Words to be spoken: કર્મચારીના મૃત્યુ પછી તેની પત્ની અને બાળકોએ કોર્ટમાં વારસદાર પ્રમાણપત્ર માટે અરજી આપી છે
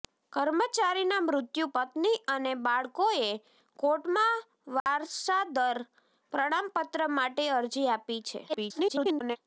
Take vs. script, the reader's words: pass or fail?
fail